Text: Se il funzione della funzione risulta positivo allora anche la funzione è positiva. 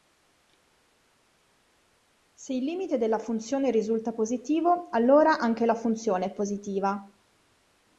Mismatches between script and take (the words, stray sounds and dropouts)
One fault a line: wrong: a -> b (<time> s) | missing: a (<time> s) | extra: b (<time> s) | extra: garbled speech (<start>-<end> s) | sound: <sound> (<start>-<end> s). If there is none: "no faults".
wrong: funzione -> limite (2.6 s)